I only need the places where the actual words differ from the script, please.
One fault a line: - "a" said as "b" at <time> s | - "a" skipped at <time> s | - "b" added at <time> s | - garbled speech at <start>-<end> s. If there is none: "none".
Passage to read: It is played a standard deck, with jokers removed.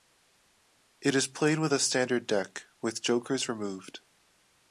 - "with" added at 1.6 s